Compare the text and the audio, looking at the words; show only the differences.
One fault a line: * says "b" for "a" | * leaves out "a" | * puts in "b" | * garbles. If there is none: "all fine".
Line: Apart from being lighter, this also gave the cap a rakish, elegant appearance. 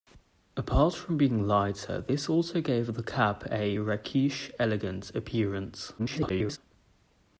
* garbles